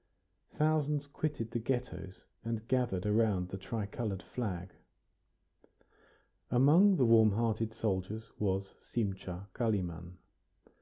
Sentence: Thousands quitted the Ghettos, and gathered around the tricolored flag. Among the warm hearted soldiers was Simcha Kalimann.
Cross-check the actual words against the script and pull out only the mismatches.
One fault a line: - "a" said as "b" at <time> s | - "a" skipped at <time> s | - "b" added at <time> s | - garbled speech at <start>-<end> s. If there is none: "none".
none